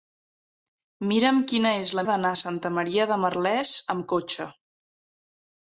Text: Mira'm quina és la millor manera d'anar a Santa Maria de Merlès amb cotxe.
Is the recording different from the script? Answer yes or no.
yes